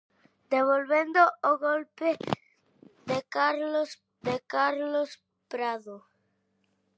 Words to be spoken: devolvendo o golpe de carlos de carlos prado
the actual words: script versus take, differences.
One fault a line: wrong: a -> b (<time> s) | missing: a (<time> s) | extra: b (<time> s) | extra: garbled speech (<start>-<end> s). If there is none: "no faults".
no faults